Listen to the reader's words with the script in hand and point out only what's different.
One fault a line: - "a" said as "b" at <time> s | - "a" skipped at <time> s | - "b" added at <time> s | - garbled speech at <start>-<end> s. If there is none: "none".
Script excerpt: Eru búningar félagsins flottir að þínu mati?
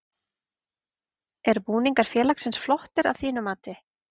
none